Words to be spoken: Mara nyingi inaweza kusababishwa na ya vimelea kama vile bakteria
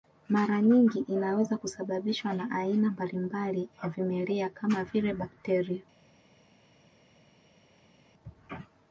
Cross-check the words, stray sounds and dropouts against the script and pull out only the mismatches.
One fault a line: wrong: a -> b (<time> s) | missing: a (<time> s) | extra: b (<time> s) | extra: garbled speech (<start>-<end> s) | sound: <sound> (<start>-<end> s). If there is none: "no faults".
extra: aina mbalimbali (2.5 s)